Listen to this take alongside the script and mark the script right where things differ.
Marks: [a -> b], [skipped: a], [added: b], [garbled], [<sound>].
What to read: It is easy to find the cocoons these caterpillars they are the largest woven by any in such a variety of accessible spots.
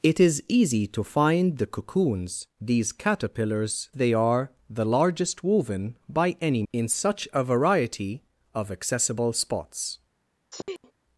It is easy to find the cocoons these caterpillars they are the largest woven by any in such a variety of accessible spots. [sneeze]